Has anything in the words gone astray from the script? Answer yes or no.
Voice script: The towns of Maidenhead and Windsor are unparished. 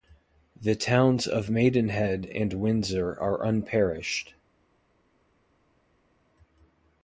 no